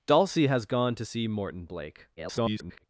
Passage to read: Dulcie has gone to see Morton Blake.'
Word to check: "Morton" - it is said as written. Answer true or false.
true